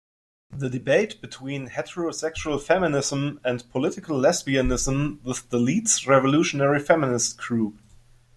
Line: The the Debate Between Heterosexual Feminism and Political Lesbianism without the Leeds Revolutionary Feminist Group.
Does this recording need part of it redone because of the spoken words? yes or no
yes